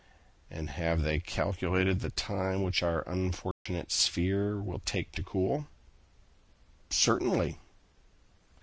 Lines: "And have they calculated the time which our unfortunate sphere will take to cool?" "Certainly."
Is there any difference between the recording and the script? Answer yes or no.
no